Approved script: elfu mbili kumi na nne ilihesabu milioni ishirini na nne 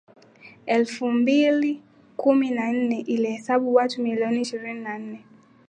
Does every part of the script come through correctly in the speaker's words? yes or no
no